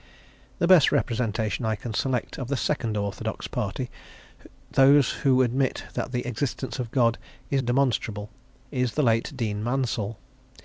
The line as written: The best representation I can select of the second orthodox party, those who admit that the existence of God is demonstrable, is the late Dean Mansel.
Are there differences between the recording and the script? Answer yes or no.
no